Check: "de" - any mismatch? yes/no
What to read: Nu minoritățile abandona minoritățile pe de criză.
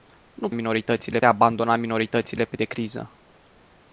no